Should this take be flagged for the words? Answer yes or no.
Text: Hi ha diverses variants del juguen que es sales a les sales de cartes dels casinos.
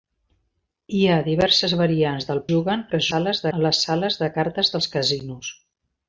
no